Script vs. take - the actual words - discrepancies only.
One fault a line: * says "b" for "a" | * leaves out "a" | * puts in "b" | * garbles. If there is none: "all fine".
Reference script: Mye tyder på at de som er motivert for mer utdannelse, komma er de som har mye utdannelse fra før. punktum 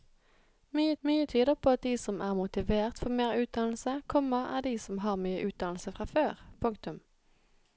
* puts in "mye"